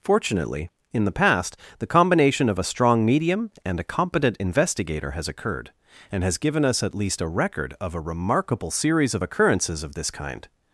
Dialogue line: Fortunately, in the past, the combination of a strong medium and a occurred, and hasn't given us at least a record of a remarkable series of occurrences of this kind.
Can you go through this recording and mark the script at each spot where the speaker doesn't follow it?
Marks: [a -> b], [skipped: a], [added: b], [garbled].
Fortunately, in the past, the combination of a strong medium and a [added: competent investigator has] occurred, and [hasn't -> has] given us at least a record of a remarkable series of occurrences of this kind.